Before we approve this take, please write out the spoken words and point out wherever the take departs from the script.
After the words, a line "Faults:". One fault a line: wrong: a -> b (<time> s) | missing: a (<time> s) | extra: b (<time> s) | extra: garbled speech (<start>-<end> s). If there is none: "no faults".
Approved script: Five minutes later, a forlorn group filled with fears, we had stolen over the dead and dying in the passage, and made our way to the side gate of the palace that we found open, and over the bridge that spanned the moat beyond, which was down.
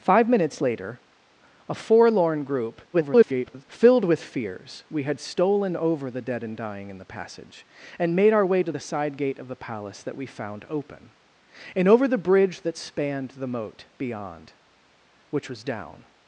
Five minutes later, a forlorn group [garbled] filled with fears, we had stolen over the dead and dying in the passage, and made our way to the side gate of the palace that we found open, and over the bridge that spanned the moat beyond, which was down.
Faults:
extra: garbled speech (2.9-3.6 s)